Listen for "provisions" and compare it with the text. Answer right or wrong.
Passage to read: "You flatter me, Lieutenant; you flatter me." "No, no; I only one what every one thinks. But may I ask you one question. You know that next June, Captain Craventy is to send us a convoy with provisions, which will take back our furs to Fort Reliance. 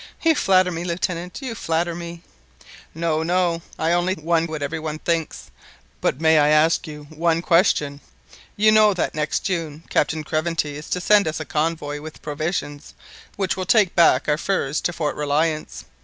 right